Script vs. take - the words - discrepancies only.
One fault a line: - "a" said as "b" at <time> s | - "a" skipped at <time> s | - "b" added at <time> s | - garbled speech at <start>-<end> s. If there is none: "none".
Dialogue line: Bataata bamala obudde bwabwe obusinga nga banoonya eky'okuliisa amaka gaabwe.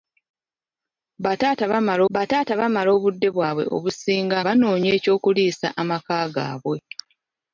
- "bataata bamala" added at 2.1 s
- "nga" skipped at 4.4 s